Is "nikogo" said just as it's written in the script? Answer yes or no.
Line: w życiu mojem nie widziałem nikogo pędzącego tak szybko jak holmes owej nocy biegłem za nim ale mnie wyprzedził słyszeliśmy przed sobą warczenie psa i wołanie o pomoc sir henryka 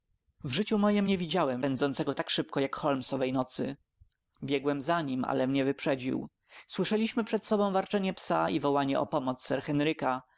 no